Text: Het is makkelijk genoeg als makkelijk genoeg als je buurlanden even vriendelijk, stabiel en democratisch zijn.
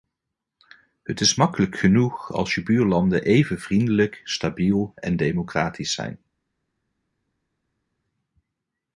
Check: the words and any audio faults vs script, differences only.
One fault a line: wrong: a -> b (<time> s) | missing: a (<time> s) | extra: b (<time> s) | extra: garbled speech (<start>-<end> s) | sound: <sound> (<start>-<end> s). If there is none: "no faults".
missing: makkelijk genoeg als (2.5 s)